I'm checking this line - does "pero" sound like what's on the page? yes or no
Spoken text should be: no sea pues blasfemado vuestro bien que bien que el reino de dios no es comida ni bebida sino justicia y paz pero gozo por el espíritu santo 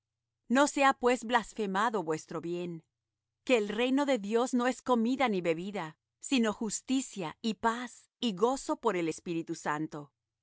no